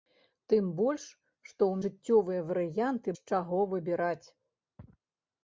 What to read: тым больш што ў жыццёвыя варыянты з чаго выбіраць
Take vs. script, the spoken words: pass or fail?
pass